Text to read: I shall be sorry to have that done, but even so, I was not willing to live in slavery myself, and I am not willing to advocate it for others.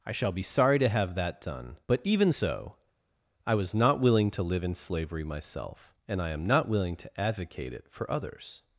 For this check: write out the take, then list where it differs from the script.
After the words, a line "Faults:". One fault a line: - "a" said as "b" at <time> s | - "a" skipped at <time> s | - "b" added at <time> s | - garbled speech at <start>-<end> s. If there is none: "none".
I shall be sorry to have that done, but even so, I was not willing to live in slavery myself, and I am not willing to advocate it for others.
Faults:
none